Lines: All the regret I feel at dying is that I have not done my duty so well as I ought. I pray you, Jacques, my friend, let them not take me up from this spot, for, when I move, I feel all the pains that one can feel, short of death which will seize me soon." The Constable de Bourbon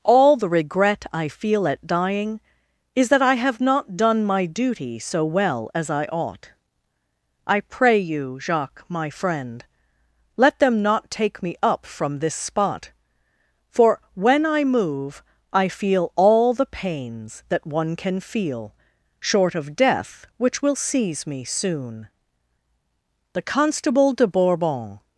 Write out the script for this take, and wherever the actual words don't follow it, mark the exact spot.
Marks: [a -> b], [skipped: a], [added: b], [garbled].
All the regret I feel at dying is that I have not done my duty so well as I ought. I pray you, Jacques, my friend, let them not take me up from this spot, for, when I move, I feel all the pains that one can feel, short of death which will seize me soon." The Constable de Bourbon